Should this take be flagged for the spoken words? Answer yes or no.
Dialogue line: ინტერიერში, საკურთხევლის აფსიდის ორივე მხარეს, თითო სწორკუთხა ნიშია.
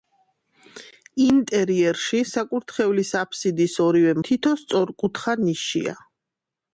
yes